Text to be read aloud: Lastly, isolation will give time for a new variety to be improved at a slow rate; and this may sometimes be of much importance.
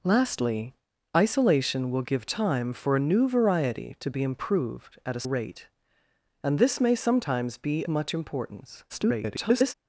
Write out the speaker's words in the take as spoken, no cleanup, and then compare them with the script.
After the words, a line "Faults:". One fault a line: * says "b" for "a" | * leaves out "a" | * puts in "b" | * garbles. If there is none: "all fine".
Lastly, isolation will give time for a new variety to be improved at a rate; and this may sometimes be much importance. [garbled]
Faults:
* leaves out "slow"
* leaves out "of"
* garbles